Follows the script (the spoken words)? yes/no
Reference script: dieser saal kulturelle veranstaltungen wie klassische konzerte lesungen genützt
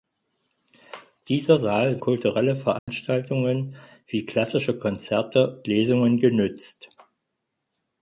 yes